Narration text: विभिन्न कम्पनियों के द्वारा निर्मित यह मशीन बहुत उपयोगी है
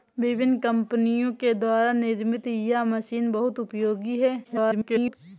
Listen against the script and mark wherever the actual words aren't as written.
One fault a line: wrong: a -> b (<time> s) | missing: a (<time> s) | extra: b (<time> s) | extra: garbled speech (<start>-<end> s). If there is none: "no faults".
extra: garbled speech (4.4-5.2 s)